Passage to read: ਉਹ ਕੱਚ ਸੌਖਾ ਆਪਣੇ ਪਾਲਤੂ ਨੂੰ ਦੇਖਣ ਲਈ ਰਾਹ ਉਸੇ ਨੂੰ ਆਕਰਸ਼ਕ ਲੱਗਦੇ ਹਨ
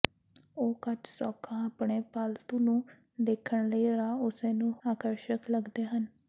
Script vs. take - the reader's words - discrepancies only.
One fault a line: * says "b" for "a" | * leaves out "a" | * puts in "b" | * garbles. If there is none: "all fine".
all fine